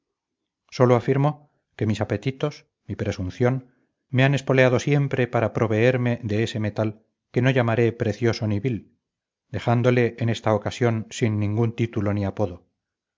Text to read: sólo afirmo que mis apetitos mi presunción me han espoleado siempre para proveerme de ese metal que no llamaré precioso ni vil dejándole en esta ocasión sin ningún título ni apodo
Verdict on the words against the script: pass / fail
pass